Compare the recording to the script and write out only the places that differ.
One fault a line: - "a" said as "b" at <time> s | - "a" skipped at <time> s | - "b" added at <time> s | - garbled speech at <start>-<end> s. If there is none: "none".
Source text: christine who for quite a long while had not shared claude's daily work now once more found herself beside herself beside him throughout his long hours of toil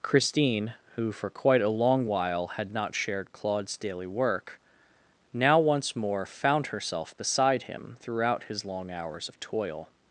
- "herself beside" skipped at 7.6 s